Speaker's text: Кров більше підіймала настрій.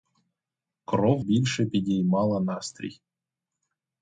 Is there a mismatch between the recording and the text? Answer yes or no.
no